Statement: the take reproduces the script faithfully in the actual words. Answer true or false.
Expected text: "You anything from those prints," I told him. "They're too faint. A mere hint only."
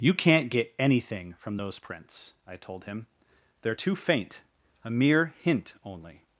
false